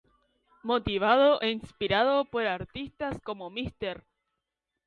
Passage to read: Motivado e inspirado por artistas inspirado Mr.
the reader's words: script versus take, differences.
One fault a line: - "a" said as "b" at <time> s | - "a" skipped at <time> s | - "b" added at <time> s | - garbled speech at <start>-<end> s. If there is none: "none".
- "inspirado" said as "como" at 3.3 s